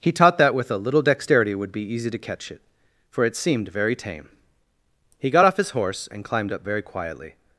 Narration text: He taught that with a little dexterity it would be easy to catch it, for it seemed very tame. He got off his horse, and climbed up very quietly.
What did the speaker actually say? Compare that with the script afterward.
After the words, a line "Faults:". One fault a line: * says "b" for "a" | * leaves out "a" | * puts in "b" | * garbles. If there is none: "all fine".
He taught that with a little dexterity it would be easy to catch it, for it seemed very tame. He got off his horse, and climbed up very quietly.
Faults:
all fine